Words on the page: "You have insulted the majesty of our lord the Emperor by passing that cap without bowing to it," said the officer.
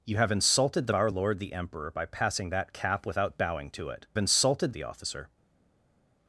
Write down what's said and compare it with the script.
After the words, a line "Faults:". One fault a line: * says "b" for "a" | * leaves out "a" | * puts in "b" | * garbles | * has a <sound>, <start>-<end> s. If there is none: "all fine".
"You have insulted the our lord the Emperor by passing that cap without bowing to it," insulted the officer.
Faults:
* leaves out "majesty of"
* says "insulted" for "said"